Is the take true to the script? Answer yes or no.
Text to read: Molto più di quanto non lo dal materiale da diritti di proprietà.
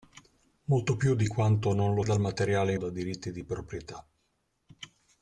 yes